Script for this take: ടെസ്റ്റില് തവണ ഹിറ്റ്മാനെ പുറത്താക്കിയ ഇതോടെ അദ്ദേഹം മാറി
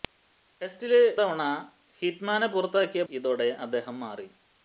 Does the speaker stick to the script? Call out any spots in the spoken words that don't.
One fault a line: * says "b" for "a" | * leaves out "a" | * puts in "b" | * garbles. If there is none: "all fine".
all fine